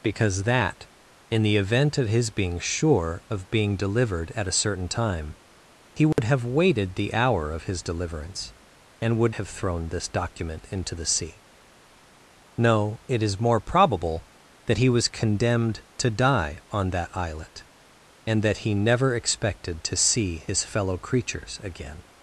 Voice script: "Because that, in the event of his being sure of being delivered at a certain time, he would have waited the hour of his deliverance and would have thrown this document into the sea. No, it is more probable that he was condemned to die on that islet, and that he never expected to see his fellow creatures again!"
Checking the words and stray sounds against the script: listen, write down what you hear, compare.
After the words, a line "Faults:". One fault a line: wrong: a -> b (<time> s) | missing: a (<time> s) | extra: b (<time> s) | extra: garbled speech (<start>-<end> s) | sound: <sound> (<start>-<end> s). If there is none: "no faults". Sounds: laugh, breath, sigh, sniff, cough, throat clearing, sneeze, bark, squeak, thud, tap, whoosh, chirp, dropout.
"Because that, in the event of his being sure of being delivered at a certain time, he would have waited the hour of his deliverance and would have thrown this document into the sea. No, it is more probable that he was condemned to die on that islet, and that he never expected to see his fellow creatures again!"
Faults:
sound: dropout (6.1-6.2 s)